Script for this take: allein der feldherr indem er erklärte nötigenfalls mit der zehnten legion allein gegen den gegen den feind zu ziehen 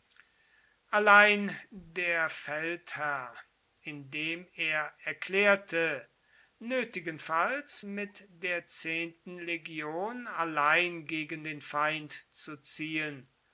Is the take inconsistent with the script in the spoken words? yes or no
yes